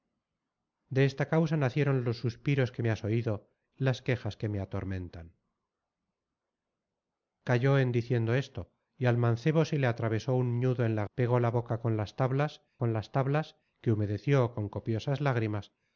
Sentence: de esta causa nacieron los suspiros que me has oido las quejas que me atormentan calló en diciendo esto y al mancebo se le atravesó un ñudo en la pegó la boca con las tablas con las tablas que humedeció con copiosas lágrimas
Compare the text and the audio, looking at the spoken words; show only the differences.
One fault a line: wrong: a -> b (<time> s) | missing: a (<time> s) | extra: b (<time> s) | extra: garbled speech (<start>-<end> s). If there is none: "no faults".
no faults